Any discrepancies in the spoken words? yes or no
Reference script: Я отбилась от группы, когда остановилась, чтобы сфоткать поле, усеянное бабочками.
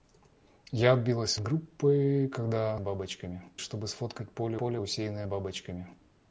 yes